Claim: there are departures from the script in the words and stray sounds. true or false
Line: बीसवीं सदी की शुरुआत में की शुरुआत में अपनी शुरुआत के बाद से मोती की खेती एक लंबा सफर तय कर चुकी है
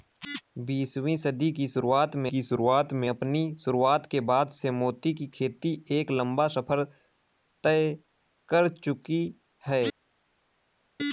false